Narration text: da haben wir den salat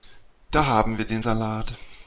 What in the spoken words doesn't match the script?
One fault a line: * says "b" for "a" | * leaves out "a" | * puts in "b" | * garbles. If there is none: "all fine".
all fine